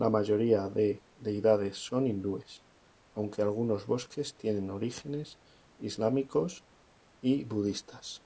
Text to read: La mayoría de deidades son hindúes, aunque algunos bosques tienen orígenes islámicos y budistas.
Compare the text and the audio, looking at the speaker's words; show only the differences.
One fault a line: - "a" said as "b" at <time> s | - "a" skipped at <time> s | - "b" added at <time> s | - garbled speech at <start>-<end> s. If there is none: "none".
none